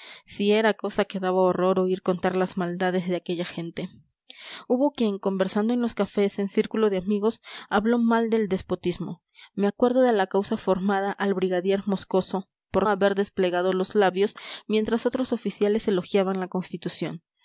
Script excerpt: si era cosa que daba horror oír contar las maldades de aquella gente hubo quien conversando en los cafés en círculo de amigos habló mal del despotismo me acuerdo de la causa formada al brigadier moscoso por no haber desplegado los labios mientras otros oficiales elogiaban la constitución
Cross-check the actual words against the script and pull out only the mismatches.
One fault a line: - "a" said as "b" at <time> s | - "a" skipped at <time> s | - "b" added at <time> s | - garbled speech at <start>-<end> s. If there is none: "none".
- "no" skipped at 12.9 s